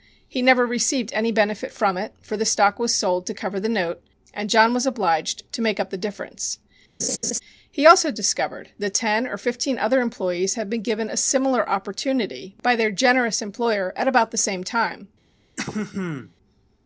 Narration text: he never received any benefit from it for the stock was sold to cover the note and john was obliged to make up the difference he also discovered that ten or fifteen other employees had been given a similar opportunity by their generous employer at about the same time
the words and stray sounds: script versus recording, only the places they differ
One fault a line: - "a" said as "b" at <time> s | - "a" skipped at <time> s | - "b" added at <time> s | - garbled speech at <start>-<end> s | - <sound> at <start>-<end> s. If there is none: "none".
- laugh at 7.0-7.4 s
- throat clearing at 15.6-16.3 s